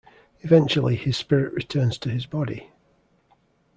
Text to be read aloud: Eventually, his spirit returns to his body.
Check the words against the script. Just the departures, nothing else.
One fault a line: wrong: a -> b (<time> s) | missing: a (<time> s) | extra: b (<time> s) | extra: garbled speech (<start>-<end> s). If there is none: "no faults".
no faults